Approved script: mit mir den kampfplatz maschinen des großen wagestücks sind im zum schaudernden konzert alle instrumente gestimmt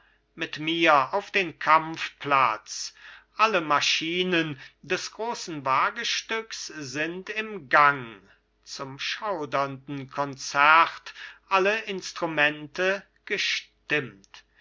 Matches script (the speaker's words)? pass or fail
fail